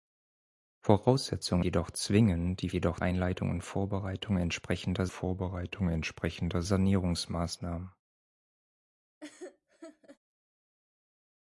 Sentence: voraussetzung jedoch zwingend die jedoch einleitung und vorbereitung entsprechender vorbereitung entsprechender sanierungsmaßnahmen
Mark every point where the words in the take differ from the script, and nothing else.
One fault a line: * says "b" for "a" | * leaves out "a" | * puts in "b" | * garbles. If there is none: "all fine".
all fine